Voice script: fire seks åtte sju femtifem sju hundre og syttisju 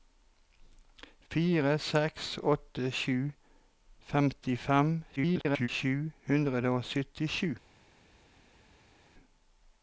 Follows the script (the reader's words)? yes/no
no